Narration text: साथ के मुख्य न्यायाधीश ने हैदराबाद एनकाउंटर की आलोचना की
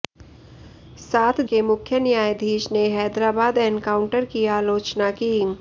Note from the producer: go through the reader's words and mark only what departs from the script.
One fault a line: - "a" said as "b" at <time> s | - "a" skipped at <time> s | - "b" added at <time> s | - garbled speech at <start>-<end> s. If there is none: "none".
none